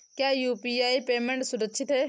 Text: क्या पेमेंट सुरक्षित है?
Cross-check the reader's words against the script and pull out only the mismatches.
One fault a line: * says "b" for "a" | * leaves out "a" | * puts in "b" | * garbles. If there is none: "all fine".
* puts in "यू.पी.आई"